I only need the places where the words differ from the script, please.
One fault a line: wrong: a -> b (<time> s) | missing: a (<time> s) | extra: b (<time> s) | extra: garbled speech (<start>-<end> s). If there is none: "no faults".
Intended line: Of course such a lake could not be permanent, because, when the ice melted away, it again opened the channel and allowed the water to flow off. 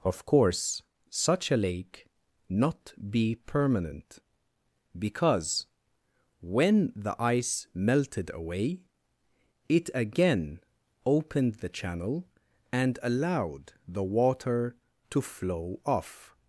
missing: could (2.1 s)